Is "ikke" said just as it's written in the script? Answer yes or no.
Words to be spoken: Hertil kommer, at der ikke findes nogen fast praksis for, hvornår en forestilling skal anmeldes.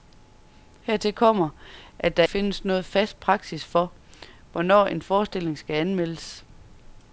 no